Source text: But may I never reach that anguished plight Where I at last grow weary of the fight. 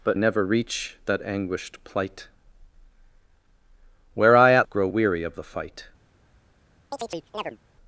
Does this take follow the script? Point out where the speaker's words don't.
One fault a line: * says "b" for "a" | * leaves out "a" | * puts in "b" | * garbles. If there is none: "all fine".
* leaves out "may I"
* leaves out "last"